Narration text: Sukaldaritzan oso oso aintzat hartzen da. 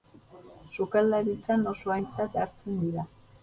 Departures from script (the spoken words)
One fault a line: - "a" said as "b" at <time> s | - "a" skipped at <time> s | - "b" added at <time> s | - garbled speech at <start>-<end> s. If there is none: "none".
- "oso" skipped at 1.9 s
- "da" said as "dira" at 2.9 s